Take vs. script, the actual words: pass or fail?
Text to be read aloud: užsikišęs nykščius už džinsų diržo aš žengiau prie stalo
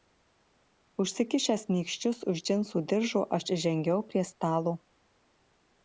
pass